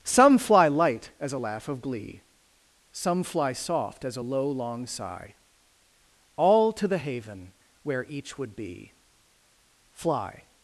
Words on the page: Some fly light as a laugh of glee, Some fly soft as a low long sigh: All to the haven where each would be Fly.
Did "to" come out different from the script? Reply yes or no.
no